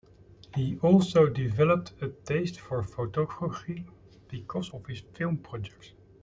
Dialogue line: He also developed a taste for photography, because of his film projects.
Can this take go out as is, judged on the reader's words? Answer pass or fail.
pass